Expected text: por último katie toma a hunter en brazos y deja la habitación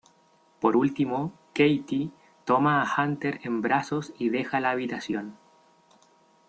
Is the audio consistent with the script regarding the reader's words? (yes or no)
yes